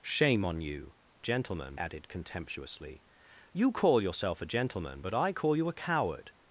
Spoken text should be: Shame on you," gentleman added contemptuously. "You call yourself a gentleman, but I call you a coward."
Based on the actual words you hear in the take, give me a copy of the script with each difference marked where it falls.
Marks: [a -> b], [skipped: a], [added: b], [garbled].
Shame on you," gentleman added contemptuously. "You call yourself a gentleman, but I call you a coward."